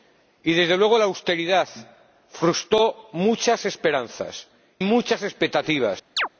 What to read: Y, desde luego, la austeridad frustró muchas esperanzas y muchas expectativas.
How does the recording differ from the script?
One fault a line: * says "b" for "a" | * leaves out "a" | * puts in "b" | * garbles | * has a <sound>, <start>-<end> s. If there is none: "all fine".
* leaves out "y"
* has a chirp, 6.2-6.3 s